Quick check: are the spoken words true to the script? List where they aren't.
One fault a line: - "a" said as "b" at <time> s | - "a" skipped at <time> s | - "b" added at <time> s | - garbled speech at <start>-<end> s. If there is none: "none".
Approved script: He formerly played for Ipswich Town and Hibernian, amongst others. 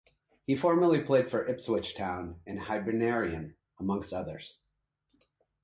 none